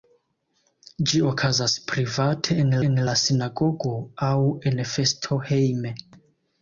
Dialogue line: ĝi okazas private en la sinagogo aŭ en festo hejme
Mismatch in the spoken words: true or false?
true